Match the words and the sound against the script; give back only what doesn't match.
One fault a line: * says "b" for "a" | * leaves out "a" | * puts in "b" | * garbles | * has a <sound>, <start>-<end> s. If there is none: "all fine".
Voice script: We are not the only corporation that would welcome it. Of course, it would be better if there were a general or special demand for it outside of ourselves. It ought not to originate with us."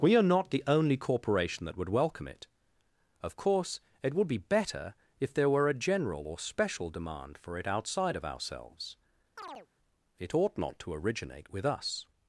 * has a chirp, 9.4-9.7 s